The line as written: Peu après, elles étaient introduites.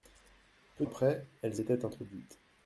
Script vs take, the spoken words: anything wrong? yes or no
no